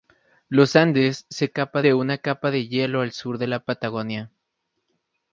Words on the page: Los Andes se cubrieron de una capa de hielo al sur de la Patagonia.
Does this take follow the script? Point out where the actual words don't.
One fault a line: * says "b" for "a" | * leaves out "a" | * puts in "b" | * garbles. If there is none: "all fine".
* says "capa" for "cubrieron"